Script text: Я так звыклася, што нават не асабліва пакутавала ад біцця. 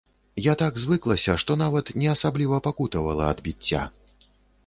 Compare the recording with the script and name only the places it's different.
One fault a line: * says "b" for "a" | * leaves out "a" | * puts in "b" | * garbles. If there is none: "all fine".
all fine